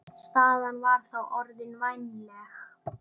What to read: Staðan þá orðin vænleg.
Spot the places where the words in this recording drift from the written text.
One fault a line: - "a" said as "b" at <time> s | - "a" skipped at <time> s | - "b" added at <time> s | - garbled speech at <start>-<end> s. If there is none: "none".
- "var" added at 0.8 s